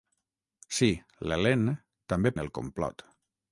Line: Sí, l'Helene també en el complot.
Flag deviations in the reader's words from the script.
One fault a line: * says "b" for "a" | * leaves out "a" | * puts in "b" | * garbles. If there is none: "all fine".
all fine